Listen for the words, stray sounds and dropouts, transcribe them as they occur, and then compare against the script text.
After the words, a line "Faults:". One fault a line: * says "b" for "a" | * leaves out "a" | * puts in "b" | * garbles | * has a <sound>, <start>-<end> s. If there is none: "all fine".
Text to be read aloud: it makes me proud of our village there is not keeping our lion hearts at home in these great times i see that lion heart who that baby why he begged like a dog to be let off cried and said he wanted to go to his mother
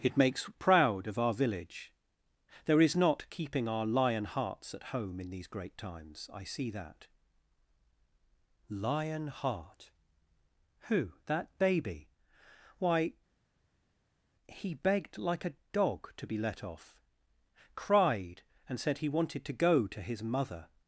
it makes proud of our village there is not keeping our lion hearts at home in these great times i see that lion heart who that baby why he begged like a dog to be let off cried and said he wanted to go to his mother
Faults:
* leaves out "me"